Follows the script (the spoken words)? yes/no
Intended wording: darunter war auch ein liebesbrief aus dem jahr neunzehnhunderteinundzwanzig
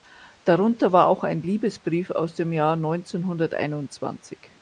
yes